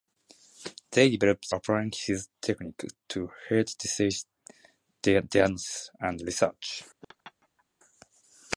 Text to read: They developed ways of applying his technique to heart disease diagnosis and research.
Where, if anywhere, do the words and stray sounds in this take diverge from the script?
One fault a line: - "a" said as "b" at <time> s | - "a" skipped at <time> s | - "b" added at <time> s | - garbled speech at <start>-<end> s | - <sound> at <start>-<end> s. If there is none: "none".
- "ways of" skipped at 1.5 s
- laugh at 7.0-7.6 s